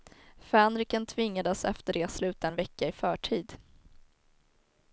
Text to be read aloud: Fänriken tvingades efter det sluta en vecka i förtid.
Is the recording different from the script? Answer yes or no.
no